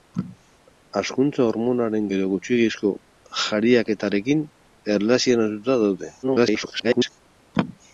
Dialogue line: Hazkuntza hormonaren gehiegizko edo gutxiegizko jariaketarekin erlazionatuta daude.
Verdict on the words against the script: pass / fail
fail